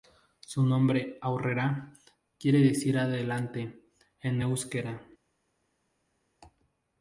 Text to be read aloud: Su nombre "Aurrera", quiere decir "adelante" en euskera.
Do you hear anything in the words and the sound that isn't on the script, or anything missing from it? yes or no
no